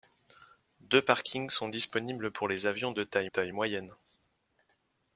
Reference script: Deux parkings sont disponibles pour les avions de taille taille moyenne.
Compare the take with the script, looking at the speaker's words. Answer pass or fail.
pass